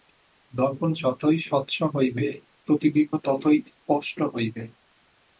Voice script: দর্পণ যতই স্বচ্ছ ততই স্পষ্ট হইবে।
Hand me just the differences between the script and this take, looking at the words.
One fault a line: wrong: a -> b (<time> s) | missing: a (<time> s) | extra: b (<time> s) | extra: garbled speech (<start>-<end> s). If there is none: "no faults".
extra: হইবে প্রতিবিম্ব (1.9 s)